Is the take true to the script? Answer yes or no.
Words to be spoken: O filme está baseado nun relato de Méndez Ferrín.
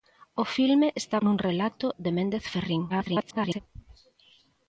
no